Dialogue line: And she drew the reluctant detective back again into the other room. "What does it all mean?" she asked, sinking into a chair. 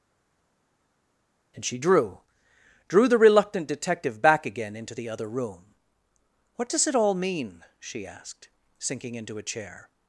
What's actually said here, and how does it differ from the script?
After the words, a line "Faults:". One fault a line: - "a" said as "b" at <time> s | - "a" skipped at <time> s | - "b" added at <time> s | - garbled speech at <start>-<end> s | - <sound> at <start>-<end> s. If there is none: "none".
And she drew drew the reluctant detective back again into the other room. "What does it all mean?" she asked, sinking into a chair.
Faults:
- "drew" added at 2.9 s